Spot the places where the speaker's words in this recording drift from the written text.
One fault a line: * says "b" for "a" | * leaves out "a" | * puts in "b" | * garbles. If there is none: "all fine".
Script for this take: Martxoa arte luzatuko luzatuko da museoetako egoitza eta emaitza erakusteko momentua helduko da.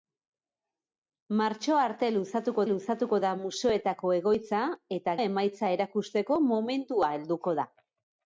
all fine